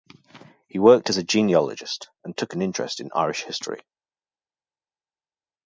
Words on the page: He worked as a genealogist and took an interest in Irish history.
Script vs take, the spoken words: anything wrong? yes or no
no